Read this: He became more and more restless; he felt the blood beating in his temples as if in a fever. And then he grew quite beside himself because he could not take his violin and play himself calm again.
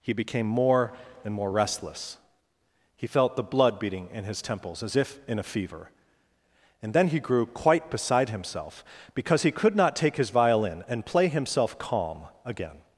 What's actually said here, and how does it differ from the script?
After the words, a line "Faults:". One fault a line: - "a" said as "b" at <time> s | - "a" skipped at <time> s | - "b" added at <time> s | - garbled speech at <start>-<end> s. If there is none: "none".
He became more and more restless; he felt the blood beating in his temples as if in a fever. And then he grew quite beside himself because he could not take his violin and play himself calm again.
Faults:
none